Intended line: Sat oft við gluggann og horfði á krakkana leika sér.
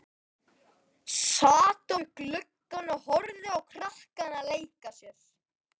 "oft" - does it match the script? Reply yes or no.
no